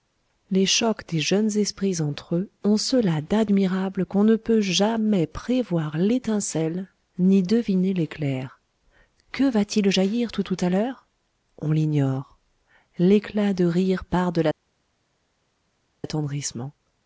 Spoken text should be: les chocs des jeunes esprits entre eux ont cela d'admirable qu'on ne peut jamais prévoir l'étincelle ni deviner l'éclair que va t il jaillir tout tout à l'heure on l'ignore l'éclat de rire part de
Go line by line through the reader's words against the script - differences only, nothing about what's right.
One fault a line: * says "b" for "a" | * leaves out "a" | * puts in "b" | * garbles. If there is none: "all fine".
all fine